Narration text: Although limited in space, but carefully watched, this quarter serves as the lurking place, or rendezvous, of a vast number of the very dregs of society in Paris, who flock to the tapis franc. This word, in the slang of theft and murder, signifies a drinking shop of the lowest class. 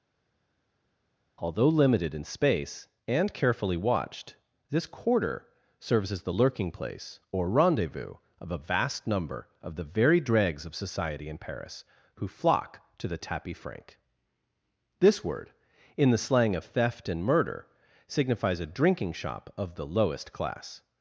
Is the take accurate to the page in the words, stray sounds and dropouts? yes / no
no